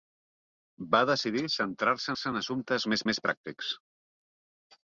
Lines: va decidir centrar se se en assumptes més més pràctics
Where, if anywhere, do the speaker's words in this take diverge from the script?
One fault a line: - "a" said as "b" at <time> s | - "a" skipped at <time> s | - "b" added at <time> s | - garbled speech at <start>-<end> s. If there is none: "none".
none